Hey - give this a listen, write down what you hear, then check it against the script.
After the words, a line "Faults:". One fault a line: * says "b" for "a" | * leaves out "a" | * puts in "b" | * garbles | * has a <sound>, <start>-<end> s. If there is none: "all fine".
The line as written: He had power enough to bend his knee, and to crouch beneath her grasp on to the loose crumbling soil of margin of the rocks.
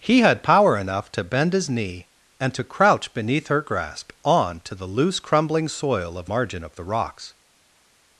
He had power enough to bend his knee, and to crouch beneath her grasp on to the loose crumbling soil of margin of the rocks.
Faults:
all fine